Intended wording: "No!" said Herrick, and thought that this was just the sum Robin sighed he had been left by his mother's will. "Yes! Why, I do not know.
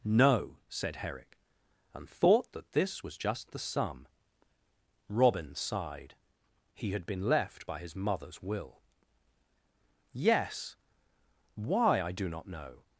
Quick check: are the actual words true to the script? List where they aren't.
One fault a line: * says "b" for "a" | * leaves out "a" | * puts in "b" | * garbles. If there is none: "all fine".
all fine